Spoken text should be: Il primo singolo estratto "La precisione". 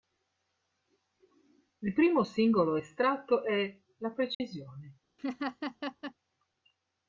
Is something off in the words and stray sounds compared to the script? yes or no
yes